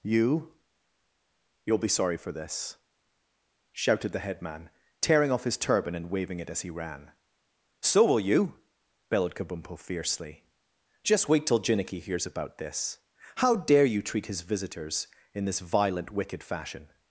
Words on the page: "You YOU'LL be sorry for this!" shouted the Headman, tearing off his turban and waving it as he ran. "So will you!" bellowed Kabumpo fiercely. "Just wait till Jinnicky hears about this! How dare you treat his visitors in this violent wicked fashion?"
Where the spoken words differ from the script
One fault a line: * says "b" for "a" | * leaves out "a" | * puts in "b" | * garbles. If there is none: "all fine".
all fine